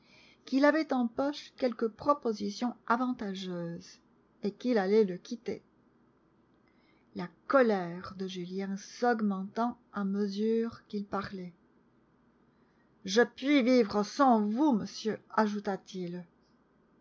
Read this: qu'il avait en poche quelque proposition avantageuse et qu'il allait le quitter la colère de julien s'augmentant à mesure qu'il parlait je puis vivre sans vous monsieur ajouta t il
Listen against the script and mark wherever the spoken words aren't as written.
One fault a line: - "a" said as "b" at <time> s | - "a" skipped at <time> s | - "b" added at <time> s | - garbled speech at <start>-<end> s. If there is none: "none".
none